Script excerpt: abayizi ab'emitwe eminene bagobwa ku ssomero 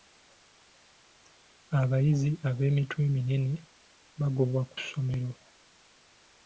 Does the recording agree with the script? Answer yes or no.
yes